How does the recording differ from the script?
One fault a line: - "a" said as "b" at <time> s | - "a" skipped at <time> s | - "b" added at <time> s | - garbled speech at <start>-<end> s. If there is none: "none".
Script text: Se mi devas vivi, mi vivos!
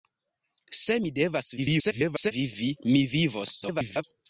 - garbled speech at 1.6-2.3 s
- garbled speech at 3.6-4.0 s